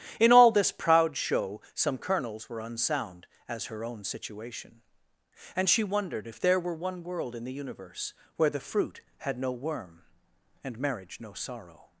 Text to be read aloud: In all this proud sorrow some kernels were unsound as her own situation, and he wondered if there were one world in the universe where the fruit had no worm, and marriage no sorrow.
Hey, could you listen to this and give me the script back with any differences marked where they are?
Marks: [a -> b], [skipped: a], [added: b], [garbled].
In all this proud [sorrow -> show] some kernels were unsound as her own situation, and [he -> she] wondered if there were one world in the universe where the fruit had no worm, and marriage no sorrow.